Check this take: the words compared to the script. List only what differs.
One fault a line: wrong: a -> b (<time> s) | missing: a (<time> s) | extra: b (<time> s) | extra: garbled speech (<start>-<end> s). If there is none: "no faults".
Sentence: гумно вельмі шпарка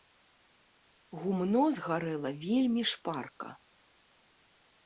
extra: згарэла (1.8 s)